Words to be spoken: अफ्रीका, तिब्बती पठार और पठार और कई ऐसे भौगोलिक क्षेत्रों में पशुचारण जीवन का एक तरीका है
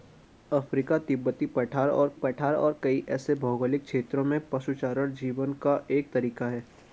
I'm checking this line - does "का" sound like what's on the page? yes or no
yes